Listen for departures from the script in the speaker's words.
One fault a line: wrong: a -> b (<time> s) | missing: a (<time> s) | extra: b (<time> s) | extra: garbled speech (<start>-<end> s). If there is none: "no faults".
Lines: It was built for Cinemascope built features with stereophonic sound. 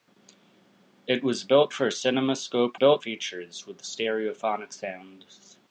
no faults